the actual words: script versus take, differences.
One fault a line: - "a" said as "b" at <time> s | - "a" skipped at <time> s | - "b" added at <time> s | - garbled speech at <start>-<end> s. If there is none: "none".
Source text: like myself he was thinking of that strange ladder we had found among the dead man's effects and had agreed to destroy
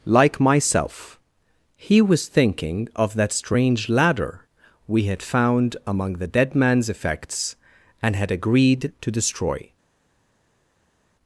none